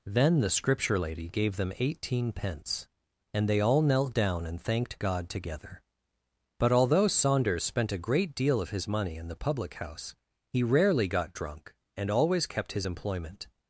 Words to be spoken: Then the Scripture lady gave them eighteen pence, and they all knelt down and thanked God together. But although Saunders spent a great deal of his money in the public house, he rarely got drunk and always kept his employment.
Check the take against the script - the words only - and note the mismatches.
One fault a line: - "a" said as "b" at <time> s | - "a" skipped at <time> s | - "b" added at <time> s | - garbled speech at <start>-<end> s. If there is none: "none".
none